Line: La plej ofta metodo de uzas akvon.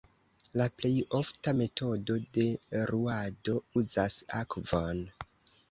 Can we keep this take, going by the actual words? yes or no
no